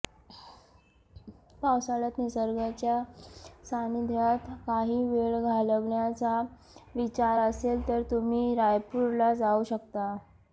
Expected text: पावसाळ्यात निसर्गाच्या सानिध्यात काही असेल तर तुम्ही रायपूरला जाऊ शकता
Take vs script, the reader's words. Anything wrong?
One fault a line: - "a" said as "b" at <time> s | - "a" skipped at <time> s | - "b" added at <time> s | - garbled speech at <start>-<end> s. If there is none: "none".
- "वेळ घालवण्याचा विचार" added at 5.0 s